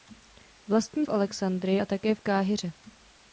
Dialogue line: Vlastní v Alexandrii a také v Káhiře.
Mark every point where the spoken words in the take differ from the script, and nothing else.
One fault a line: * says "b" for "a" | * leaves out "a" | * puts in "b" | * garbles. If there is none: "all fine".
all fine